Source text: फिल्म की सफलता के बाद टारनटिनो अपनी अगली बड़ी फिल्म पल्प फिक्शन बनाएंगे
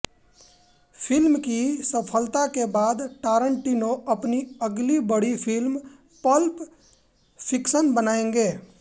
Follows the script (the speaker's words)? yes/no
yes